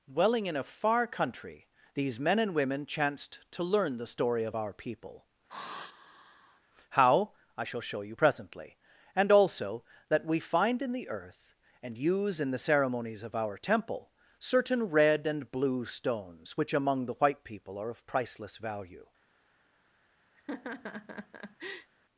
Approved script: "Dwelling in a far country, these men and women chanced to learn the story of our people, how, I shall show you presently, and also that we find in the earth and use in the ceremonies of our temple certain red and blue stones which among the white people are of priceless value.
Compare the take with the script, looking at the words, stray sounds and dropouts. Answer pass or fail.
fail